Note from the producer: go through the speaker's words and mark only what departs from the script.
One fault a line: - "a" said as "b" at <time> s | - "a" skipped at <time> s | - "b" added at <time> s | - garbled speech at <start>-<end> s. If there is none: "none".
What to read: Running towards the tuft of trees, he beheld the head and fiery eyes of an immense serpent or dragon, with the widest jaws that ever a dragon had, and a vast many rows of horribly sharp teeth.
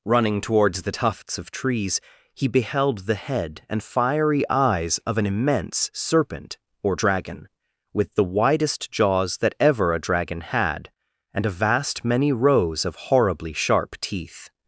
- "tuft" said as "tufts" at 0.9 s